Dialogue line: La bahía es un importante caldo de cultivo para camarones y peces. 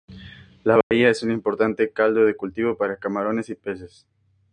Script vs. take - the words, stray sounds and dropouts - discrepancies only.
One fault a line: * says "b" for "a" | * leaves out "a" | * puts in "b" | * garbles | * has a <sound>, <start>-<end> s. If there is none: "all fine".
* has a dropout, 0.8-0.9 s